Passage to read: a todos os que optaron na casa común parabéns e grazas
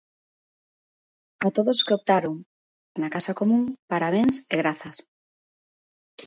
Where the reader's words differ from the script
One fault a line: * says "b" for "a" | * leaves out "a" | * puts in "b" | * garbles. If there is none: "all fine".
all fine